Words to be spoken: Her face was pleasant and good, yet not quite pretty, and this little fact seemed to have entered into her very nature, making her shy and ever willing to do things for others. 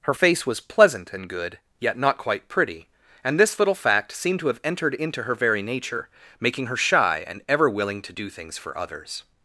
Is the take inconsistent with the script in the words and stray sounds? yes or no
no